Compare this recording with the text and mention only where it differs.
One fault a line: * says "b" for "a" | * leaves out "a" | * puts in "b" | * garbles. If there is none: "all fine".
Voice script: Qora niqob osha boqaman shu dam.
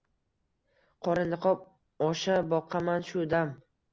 all fine